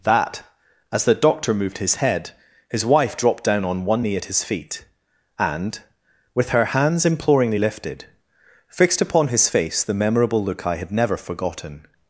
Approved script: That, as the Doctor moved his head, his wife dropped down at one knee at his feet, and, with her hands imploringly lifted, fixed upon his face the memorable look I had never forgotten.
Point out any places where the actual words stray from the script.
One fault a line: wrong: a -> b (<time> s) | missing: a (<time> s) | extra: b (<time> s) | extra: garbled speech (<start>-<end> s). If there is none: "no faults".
wrong: at -> on (3.6 s)